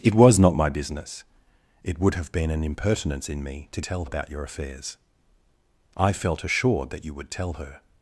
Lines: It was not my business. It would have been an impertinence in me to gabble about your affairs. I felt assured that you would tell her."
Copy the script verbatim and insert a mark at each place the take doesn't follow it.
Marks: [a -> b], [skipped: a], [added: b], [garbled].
It was not my business. It would have been an impertinence in me to [gabble -> tell] about your affairs. I felt assured that you would tell her."